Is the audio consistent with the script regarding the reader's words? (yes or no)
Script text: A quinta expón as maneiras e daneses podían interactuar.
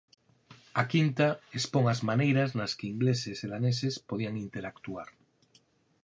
no